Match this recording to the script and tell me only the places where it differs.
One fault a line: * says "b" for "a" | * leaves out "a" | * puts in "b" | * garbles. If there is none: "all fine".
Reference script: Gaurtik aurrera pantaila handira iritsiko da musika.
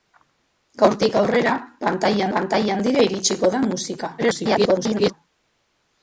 * puts in "pantaila"
* garbles